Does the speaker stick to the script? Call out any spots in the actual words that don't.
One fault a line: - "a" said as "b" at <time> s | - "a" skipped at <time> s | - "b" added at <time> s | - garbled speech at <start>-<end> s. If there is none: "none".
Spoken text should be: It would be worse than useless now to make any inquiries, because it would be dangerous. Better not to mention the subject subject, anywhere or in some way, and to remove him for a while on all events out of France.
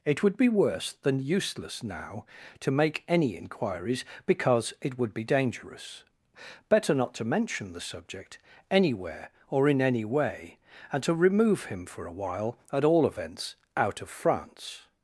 - "subject" skipped at 8.4 s
- "some" said as "any" at 9.8 s
- "on" said as "at" at 12.7 s